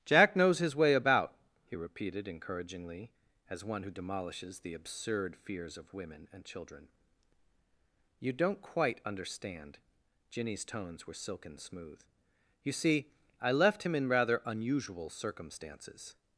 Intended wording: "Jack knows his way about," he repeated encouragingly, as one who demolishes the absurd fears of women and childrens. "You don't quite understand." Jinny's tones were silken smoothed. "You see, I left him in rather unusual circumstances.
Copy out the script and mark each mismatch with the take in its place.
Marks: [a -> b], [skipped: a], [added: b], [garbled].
"Jack knows his way about," he repeated encouragingly, as one who demolishes the absurd fears of women and [childrens. -> children] "You don't quite understand." Jinny's tones were silken [smoothed. -> smooth] "You see, I left him in rather unusual circumstances.